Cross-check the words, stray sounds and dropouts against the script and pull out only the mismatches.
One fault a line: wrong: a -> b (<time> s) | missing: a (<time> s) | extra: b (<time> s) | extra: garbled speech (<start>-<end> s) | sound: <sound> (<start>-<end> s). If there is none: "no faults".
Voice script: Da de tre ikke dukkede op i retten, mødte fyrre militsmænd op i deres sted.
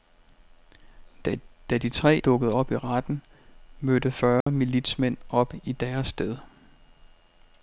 missing: ikke (2.2 s)
sound: dropout (4.4-4.5 s)